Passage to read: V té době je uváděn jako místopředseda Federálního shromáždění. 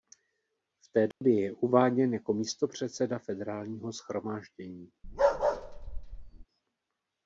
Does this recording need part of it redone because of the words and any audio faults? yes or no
yes